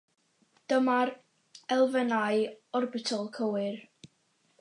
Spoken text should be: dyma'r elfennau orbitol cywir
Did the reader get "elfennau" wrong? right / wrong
right